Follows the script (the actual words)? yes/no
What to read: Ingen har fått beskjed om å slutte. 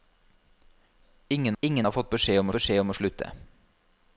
no